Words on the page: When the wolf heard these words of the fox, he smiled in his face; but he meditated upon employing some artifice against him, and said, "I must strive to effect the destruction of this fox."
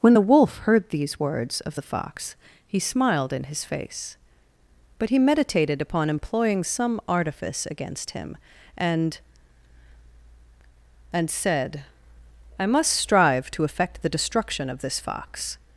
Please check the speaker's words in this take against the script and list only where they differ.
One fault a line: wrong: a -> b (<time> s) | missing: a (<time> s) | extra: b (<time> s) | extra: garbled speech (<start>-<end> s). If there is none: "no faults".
extra: and (11.1 s)